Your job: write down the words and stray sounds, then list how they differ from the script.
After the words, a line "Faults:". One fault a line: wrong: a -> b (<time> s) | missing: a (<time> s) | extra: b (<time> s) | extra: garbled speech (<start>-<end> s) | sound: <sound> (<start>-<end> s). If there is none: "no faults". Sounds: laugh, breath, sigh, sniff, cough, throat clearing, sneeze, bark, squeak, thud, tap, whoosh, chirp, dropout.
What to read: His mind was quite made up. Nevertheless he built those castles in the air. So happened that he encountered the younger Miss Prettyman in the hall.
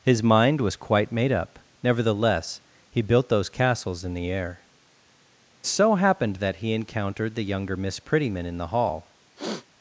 His mind was quite made up. Nevertheless he built those castles in the air. So happened that he encountered the younger Miss Prettyman in the hall.
Faults:
sound: sniff (9.4-9.7 s)